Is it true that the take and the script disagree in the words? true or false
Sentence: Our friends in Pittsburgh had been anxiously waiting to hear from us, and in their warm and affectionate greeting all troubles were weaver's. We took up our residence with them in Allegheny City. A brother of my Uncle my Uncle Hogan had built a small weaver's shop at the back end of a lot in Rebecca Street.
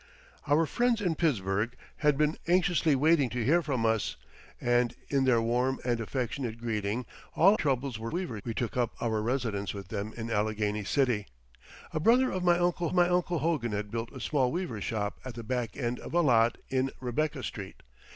false